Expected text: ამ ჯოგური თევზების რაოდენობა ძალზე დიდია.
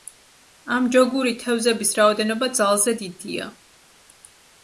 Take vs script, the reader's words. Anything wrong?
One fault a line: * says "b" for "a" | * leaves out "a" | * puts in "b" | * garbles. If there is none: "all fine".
all fine